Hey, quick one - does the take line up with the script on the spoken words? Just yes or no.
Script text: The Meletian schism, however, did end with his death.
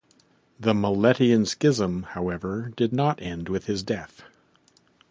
no